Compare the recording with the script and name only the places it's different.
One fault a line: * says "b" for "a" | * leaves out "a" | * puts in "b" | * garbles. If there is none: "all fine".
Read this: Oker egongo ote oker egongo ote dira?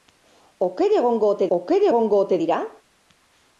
all fine